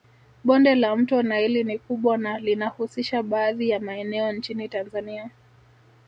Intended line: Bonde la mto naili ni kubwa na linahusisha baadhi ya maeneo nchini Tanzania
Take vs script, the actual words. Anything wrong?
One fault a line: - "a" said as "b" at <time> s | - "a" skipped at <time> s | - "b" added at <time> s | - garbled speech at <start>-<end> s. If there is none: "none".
none